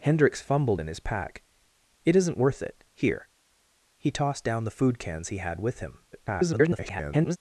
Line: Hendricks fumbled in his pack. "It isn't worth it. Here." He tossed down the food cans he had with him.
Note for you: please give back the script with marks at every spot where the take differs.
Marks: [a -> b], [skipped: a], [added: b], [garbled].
Hendricks fumbled in his pack. "It isn't worth it. Here." He tossed down the food cans he had with him. [garbled]